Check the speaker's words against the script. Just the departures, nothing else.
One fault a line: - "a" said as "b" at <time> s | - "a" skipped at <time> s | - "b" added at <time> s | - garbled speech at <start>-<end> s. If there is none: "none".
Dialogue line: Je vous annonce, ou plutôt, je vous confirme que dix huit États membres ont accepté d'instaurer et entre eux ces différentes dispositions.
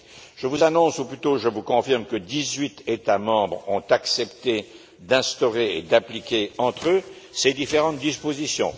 - "d'appliquer" added at 5.8 s